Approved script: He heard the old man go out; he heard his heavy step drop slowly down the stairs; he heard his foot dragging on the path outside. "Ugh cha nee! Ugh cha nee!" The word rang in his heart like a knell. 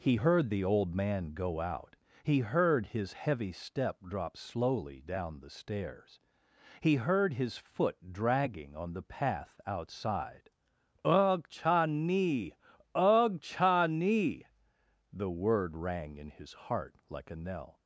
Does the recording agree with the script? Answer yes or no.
yes